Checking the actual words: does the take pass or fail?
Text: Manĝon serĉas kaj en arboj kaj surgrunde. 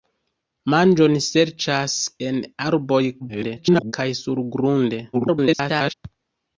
fail